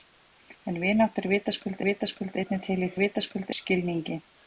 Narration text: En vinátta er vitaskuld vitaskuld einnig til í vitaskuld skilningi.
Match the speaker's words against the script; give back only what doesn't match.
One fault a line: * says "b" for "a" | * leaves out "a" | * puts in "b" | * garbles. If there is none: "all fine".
all fine